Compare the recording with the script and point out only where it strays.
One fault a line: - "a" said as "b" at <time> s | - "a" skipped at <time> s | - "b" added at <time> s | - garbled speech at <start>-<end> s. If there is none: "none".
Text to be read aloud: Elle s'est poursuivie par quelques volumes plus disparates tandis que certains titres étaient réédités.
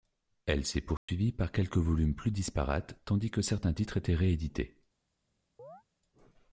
none